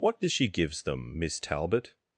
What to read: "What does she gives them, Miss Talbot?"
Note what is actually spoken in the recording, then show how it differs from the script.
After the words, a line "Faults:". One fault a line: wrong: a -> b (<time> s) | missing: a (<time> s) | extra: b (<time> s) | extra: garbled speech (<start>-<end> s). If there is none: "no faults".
"What does she gives them, Miss Talbot?"
Faults:
no faults